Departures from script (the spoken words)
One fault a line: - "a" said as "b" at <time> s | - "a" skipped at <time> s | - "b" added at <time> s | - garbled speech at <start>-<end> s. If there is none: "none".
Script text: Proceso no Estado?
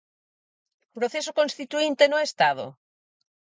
- "constituínte" added at 1.4 s